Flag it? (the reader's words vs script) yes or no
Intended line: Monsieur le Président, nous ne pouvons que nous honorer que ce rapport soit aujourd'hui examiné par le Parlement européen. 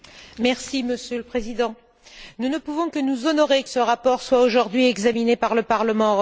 yes